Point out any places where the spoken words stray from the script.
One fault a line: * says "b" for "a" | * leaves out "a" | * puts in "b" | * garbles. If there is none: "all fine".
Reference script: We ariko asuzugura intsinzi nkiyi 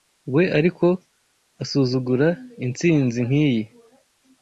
all fine